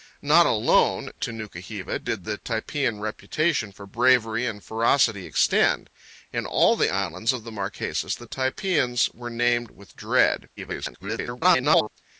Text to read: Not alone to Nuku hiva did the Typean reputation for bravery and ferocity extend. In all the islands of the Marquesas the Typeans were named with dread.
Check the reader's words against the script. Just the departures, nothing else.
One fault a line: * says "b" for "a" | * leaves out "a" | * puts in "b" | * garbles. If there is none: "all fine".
* garbles